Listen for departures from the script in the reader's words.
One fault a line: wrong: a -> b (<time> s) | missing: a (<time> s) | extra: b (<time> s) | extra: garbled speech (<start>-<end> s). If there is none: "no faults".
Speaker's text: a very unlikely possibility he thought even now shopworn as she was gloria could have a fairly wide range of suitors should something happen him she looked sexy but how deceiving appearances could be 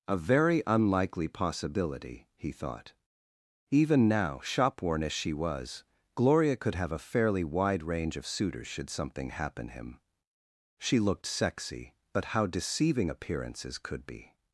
no faults